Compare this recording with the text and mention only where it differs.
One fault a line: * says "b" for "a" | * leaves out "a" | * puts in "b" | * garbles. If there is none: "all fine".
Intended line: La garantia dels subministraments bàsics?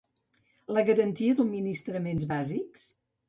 * leaves out "dels"